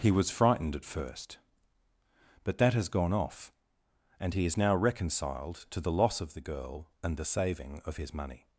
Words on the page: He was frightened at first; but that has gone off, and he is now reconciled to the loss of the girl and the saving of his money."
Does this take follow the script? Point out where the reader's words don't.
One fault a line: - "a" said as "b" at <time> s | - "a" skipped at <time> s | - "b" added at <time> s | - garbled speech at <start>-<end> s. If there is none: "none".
none